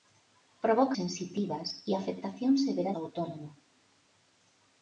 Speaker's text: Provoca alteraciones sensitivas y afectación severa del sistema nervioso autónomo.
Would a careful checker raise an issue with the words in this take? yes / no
yes